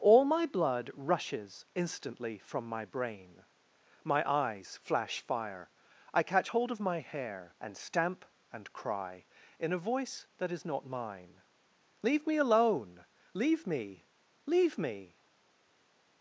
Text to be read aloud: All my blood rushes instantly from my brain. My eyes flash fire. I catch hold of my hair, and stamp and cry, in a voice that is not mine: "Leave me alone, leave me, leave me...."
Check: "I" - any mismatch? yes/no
no